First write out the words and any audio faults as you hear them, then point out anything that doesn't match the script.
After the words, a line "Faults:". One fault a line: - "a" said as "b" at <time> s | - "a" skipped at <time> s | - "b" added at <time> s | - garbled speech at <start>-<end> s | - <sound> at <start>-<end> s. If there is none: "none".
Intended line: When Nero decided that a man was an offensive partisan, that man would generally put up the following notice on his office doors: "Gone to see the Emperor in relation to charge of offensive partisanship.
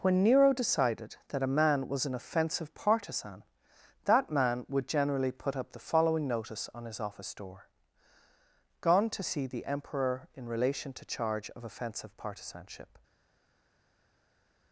When Nero decided that a man was an offensive partisan, that man would generally put up the following notice on his office door: "Gone to see the Emperor in relation to charge of offensive partisanship.
Faults:
- "doors" said as "door" at 7.3 s